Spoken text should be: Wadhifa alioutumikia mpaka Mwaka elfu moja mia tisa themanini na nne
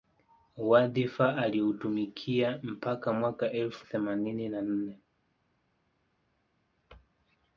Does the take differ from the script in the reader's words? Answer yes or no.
yes